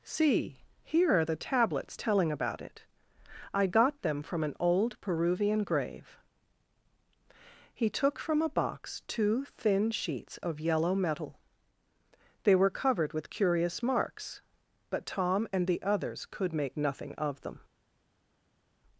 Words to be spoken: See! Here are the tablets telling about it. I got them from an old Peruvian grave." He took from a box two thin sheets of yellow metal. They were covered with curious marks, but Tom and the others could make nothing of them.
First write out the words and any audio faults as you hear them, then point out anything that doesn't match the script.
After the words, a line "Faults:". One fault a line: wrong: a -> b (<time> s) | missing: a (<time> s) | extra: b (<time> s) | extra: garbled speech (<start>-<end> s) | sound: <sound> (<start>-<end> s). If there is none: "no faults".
See! Here are the tablets telling about it. I got them from an old Peruvian grave." He took from a box two thin sheets of yellow metal. They were covered with curious marks, but Tom and the others could make nothing of them.
Faults:
no faults